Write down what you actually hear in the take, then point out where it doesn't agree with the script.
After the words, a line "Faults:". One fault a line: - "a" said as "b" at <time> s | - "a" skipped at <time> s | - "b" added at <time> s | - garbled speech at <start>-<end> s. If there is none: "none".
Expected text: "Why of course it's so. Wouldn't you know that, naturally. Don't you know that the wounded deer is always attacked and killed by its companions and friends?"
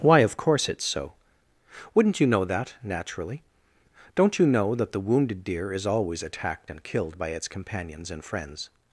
"Why of course it's so. Wouldn't you know that, naturally. Don't you know that the wounded deer is always attacked and killed by its companions and friends?"
Faults:
none